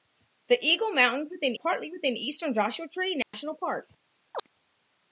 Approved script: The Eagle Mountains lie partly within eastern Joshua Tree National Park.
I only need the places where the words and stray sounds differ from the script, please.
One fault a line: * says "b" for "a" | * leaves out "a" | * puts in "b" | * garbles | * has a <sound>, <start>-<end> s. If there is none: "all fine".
* says "within" for "lie"
* has a dropout, 3.2-3.3 s
* has a chirp, 4.3-4.5 s